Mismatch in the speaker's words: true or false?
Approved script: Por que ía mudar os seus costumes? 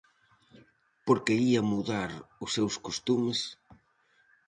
false